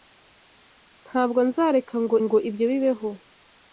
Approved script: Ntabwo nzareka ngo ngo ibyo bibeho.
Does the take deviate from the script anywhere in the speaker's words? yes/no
no